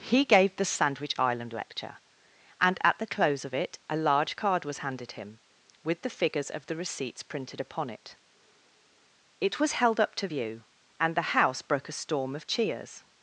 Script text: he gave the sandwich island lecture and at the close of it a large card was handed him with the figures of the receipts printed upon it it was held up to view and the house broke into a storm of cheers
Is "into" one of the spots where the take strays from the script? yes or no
yes